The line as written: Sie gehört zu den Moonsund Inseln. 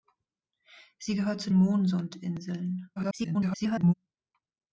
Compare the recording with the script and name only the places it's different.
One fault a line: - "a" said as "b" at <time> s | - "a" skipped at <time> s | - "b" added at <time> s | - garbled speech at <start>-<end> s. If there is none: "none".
- "den" skipped at 1.5 s
- garbled speech at 3.0-3.9 s